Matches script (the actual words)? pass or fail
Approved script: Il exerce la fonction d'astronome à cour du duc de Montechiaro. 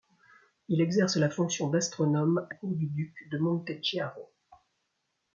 pass